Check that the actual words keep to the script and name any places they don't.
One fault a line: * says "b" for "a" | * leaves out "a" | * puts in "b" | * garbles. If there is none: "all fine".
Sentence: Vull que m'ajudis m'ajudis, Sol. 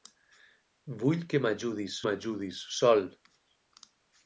all fine